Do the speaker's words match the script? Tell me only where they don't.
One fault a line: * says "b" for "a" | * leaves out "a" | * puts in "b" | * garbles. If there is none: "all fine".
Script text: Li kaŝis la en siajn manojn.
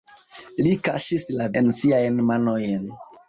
all fine